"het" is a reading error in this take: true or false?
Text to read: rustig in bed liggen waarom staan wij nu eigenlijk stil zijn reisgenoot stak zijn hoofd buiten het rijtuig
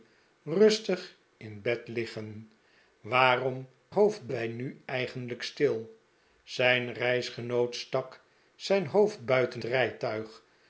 true